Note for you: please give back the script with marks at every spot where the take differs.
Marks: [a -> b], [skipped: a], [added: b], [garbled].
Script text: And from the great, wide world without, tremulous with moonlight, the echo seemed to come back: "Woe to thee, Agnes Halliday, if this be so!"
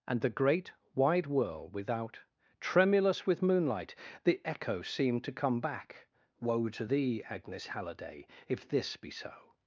And [skipped: from] the great, wide world without, tremulous with moonlight, the echo seemed to come back: "Woe to thee, Agnes Halliday, if this be so!"